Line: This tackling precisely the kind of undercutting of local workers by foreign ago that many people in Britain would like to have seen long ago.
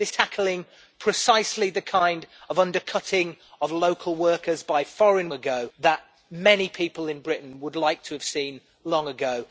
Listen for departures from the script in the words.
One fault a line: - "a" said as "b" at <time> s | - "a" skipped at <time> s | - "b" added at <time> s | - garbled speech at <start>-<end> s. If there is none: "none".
none